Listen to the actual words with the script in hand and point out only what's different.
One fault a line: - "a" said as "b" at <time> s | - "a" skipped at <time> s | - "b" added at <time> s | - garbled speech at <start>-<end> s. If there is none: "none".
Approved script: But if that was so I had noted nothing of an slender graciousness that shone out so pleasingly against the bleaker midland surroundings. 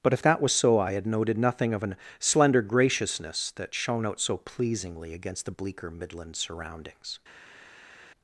none